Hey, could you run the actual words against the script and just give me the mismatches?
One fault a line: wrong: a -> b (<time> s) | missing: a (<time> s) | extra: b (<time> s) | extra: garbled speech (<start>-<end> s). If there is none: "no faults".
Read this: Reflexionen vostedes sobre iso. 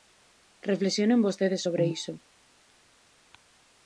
no faults